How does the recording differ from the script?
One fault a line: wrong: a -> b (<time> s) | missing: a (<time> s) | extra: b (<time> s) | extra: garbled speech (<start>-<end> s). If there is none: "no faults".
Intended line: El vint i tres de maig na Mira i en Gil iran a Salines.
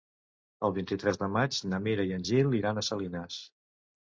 no faults